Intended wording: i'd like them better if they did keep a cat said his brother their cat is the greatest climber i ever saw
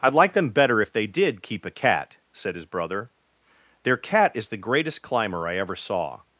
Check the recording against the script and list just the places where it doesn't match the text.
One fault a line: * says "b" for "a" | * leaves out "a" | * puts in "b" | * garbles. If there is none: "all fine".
all fine